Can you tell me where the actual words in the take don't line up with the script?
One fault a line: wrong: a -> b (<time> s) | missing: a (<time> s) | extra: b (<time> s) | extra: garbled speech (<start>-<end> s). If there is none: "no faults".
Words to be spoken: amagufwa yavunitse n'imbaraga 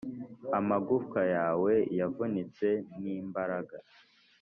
extra: yawe (1.4 s)